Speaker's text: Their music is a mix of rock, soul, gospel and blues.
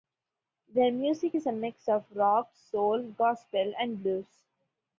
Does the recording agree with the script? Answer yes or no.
yes